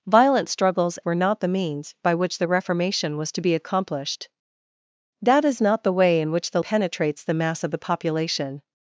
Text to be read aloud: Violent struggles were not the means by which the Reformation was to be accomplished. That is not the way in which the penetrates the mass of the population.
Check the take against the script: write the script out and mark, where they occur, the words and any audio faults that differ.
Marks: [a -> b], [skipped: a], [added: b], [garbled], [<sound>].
Violent struggles were not the means by which the Reformation was to be accomplished. That is not the way in which the penetrates the mass of the population.